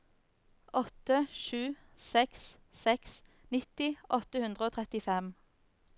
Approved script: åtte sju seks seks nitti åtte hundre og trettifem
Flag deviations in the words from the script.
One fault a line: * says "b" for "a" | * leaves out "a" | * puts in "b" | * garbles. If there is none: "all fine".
all fine